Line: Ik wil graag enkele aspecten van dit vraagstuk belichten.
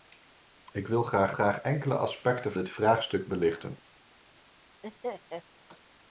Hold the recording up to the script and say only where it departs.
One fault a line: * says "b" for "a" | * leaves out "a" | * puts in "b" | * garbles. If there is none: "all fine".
* puts in "graag"
* leaves out "van"